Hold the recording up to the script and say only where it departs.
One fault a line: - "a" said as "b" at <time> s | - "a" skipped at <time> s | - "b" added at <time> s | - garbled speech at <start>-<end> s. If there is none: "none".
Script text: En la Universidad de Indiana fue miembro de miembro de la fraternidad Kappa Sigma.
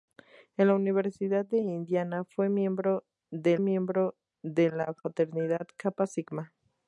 none